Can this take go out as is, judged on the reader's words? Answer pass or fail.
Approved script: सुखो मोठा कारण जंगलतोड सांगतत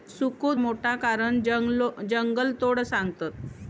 pass